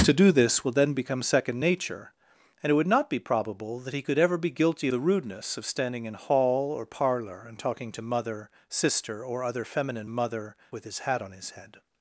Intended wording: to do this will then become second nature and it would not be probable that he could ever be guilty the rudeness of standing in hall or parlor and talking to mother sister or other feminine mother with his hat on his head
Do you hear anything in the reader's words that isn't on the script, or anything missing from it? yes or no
no